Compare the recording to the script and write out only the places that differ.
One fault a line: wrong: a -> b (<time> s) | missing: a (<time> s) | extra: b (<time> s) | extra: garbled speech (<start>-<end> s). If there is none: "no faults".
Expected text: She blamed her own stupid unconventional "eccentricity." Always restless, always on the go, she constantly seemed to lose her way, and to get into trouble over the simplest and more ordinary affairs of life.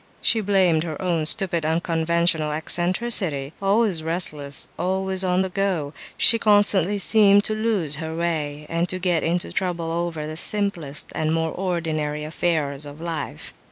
no faults